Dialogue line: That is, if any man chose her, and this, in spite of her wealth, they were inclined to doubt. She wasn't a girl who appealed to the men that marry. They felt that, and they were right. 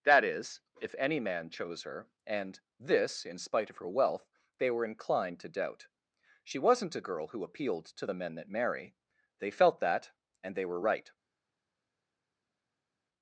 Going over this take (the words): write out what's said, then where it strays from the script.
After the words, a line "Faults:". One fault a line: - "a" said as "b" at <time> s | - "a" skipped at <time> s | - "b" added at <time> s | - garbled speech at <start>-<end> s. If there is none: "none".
That is, if any man chose her, and this, in spite of her wealth, they were inclined to doubt. She wasn't a girl who appealed to the men that marry. They felt that, and they were right.
Faults:
none